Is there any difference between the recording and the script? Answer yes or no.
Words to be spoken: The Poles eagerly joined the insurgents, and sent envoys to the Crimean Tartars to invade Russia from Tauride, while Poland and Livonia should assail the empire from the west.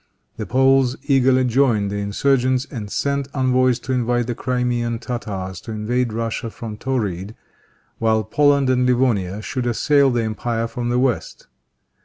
yes